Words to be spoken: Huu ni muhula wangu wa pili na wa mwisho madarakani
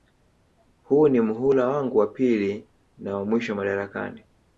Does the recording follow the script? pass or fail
pass